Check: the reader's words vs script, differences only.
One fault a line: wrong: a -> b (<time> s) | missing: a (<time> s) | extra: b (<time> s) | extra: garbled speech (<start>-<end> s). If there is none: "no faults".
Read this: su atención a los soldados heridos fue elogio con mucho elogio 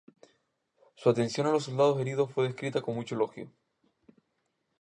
wrong: elogio -> descrita (2.5 s)